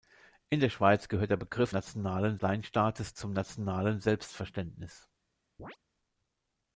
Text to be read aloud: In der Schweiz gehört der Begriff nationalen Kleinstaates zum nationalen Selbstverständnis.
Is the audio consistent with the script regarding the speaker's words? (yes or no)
yes